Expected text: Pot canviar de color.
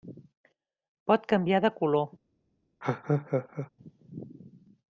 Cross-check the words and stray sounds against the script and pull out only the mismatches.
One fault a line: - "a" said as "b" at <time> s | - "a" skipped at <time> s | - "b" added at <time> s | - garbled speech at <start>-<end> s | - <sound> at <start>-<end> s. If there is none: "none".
- laugh at 2.8-3.7 s